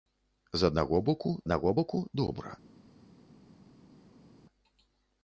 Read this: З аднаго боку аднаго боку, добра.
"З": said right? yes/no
yes